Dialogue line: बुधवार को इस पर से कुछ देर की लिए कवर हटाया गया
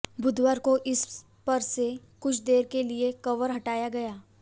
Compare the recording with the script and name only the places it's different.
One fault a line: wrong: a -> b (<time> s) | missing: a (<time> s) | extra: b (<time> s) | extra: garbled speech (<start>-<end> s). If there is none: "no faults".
wrong: की -> के (2.7 s)